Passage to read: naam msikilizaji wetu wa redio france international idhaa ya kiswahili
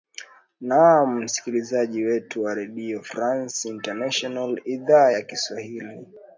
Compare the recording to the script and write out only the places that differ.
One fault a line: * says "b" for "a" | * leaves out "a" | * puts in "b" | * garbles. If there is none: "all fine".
all fine